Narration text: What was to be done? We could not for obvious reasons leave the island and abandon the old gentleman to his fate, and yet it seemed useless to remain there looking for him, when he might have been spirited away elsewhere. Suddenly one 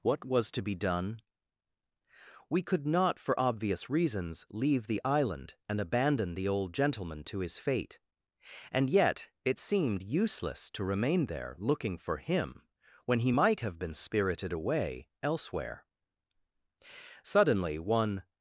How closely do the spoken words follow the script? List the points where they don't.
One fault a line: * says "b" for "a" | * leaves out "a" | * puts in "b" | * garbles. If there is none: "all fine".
all fine